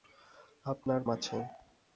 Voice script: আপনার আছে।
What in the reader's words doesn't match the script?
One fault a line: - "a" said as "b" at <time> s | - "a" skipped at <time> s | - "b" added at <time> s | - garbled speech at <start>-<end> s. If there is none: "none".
none